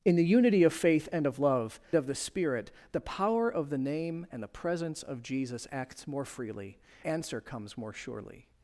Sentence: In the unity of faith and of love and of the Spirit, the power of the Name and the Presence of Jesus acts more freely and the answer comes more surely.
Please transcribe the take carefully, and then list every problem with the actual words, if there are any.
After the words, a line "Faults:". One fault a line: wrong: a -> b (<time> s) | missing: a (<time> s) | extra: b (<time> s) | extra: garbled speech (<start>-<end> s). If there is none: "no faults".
In the unity of faith and of love of the Spirit, the power of the Name and the Presence of Jesus acts more freely answer comes more surely.
Faults:
missing: and (1.8 s)
missing: and the (6.8 s)